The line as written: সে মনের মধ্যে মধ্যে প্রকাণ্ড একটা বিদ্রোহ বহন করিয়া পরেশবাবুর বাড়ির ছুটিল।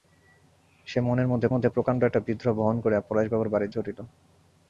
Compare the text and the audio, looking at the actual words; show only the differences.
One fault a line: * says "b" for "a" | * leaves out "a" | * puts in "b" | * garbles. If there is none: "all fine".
all fine